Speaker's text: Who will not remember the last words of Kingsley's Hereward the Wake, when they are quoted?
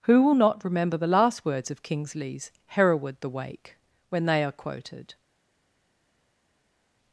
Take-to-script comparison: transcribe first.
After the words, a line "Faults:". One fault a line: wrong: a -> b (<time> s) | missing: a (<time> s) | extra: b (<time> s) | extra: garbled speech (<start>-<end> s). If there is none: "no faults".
Who will not remember the last words of Kingsley's Hereward the Wake, when they are quoted?
Faults:
no faults